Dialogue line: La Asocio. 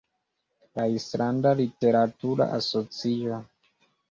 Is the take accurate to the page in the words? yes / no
no